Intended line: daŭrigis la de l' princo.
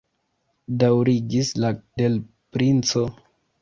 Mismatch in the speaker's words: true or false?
false